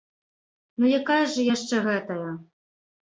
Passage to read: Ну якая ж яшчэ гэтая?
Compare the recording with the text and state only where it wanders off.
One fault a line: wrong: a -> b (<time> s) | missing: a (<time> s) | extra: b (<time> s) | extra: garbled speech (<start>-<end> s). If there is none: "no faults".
no faults